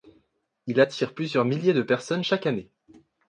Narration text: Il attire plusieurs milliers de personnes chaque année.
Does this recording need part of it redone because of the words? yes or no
no